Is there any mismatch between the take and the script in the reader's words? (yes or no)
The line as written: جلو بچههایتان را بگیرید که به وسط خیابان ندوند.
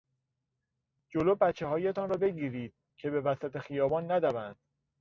no